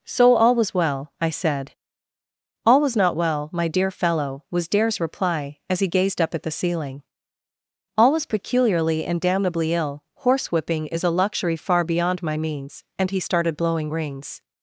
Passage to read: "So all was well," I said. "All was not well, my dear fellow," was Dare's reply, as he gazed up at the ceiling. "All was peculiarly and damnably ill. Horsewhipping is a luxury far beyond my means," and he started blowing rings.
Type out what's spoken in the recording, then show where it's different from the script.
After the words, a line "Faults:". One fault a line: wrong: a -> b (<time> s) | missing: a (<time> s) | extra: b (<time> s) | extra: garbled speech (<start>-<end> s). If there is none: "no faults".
"So all was well," I said. "All was not well, my dear fellow," was Dare's reply, as he gazed up at the ceiling. "All was peculiarly and damnably ill. Horsewhipping is a luxury far beyond my means," and he started blowing rings.
Faults:
no faults